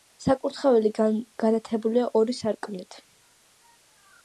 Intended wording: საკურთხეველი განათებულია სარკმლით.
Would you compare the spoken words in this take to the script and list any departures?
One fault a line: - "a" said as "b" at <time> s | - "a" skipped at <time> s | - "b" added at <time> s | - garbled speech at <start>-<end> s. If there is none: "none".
- "ორი" added at 2.2 s